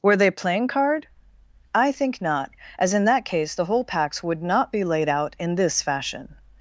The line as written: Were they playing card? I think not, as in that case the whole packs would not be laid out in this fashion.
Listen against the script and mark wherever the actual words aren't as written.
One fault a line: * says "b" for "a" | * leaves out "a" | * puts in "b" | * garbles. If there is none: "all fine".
all fine